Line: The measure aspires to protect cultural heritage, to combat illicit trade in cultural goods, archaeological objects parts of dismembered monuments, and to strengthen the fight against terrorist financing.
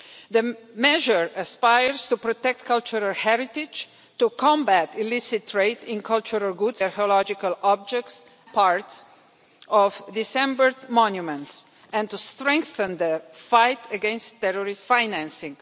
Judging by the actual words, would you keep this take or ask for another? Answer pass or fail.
pass